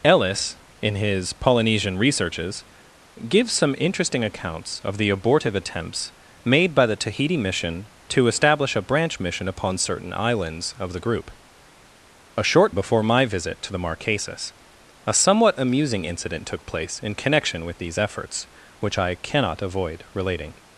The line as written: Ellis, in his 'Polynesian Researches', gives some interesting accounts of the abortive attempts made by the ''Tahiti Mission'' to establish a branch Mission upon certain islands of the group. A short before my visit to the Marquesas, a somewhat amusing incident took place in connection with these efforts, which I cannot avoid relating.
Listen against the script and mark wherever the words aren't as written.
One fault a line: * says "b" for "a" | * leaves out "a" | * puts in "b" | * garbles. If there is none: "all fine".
all fine